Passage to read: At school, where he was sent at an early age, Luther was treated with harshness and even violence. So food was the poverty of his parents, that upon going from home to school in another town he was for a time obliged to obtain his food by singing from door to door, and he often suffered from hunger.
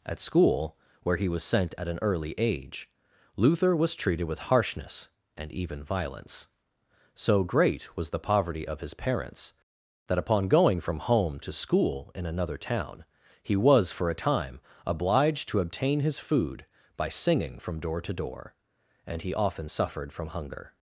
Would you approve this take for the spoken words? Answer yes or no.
no